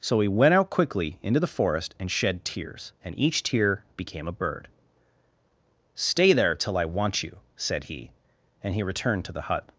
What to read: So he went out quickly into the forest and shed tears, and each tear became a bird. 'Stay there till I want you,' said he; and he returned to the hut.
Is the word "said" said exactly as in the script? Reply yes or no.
yes